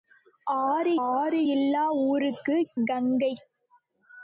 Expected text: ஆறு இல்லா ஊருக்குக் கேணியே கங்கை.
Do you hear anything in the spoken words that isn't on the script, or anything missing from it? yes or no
yes